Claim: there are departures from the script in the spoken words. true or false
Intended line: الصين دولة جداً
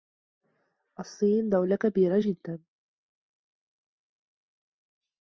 true